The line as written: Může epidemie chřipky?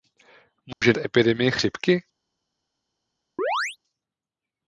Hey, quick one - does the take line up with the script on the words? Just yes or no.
yes